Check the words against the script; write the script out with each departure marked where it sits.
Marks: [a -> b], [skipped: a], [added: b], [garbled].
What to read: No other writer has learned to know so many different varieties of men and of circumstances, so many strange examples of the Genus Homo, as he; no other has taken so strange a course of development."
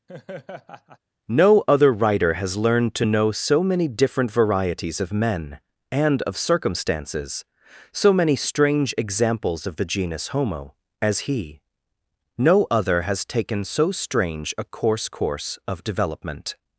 No other writer has learned to know so many different varieties of men and of circumstances, so many strange examples of the Genus Homo, as he; no other has taken so strange a course [added: course] of development."